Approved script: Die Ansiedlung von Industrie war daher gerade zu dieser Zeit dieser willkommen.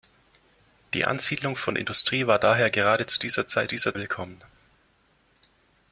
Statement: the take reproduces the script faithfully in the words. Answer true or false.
true